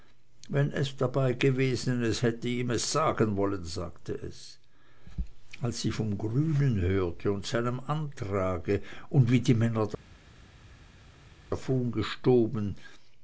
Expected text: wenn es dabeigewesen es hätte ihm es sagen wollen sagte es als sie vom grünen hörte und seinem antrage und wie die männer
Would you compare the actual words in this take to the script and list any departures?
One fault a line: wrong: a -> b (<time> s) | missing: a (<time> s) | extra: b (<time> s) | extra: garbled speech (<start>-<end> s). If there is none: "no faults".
no faults